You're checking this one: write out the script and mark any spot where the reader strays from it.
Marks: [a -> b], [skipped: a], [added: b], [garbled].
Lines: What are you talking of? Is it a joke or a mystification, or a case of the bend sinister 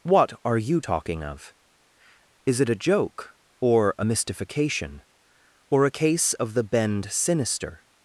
What are you talking of? Is it a joke or a mystification, or a case of the bend sinister